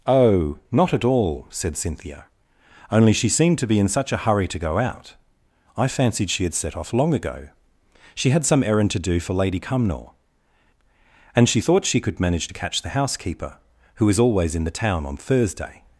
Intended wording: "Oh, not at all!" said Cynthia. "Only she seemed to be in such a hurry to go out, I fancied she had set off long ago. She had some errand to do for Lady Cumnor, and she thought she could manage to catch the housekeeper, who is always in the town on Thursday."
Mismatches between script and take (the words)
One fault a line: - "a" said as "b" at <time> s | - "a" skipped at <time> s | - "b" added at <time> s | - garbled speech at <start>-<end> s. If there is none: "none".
none